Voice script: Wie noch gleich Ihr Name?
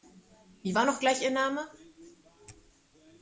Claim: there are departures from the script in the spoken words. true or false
true